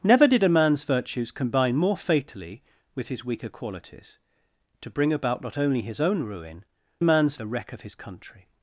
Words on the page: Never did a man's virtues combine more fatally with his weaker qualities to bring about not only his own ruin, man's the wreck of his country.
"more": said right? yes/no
yes